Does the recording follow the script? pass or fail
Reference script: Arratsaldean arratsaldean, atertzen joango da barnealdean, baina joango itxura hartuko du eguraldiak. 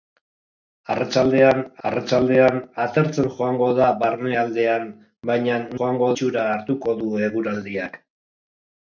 pass